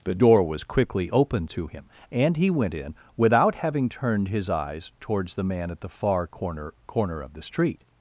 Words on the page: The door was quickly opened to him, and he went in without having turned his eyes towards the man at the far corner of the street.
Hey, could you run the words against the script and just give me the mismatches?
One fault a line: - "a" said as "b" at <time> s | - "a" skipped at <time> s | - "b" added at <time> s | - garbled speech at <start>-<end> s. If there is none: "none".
- "corner" added at 6.8 s